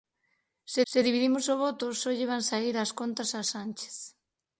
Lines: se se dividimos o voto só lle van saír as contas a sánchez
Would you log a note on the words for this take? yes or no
no